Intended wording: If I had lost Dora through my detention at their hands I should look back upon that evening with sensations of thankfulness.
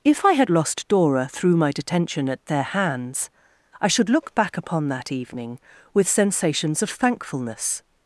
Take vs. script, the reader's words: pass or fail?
pass